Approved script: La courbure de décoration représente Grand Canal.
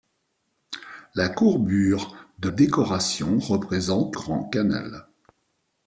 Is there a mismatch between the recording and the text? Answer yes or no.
no